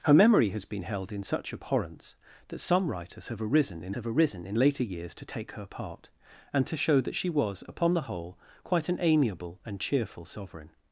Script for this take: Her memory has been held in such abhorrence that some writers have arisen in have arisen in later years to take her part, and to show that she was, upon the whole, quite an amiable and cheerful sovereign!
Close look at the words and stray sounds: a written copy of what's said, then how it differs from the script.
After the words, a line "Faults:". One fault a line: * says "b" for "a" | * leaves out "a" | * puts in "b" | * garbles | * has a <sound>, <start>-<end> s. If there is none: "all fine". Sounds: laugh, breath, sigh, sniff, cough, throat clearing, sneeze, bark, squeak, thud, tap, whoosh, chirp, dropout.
Her memory has been held in such abhorrence that some writers have arisen in have arisen in later years to take her part, and to show that she was, upon the whole, quite an amiable and cheerful sovereign!
Faults:
all fine